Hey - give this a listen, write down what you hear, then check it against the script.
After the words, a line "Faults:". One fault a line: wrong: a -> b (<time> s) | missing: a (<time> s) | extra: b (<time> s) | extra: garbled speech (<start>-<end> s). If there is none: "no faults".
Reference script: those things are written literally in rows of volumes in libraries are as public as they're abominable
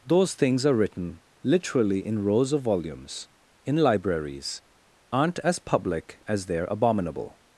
those things are written literally in rows of volumes in libraries aren't as public as they're abominable
Faults:
wrong: are -> aren't (5.1 s)